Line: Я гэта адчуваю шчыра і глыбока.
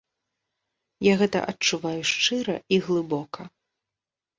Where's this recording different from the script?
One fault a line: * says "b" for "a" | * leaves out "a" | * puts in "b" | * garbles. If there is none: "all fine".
all fine